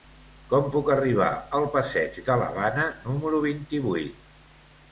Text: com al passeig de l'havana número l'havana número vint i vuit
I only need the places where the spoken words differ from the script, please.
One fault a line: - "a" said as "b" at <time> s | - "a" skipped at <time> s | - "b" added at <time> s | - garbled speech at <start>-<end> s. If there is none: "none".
- "puc arribar" added at 0.8 s
- "l'havana número" skipped at 3.4 s